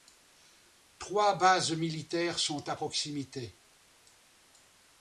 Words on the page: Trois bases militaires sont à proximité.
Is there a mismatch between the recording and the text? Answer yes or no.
no